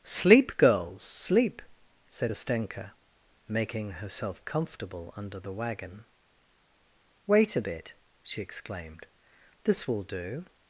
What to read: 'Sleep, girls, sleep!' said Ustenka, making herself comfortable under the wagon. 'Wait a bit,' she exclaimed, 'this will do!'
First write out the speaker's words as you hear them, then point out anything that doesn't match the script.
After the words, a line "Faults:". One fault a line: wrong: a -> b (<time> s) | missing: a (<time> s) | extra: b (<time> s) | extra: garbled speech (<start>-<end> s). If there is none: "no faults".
'Sleep, girls, sleep!' said Ustenka, making herself comfortable under the wagon. 'Wait a bit,' she exclaimed, 'this will do!'
Faults:
no faults